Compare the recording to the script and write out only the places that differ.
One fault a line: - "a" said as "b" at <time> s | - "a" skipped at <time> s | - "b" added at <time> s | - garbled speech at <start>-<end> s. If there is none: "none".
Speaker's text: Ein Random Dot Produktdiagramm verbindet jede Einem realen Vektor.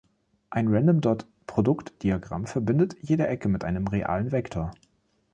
- "Ecke mit" added at 3.3 s